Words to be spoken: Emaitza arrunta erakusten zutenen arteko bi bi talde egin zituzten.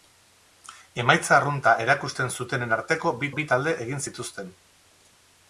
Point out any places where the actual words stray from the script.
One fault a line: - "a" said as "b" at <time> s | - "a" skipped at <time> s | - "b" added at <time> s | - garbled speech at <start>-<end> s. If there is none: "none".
none